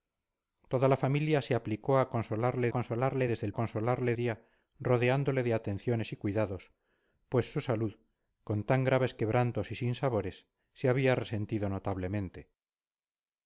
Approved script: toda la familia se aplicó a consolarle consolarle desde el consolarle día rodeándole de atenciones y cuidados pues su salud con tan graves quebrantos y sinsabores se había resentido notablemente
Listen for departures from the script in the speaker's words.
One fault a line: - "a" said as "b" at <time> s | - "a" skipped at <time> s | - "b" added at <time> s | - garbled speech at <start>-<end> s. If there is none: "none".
none